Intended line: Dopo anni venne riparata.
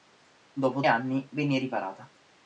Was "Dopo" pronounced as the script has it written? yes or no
yes